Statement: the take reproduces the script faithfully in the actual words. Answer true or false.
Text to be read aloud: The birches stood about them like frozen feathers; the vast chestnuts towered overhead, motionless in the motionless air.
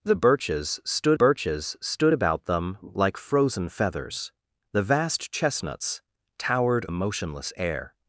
false